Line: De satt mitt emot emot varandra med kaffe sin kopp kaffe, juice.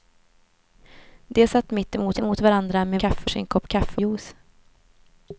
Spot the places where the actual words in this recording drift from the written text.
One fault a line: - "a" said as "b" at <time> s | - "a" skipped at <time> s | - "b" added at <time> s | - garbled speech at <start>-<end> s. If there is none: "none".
none